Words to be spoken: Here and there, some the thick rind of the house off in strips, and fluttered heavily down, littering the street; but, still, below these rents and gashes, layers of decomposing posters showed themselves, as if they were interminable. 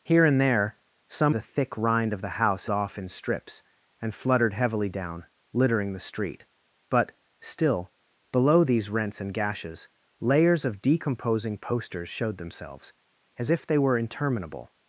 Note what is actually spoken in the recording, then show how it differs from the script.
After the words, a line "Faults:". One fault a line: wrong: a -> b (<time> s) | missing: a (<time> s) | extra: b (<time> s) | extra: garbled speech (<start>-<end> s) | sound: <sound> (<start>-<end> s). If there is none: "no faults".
Here and there, some the thick rind of the house off in strips, and fluttered heavily down, littering the street; but, still, below these rents and gashes, layers of decomposing posters showed themselves, as if they were interminable.
Faults:
no faults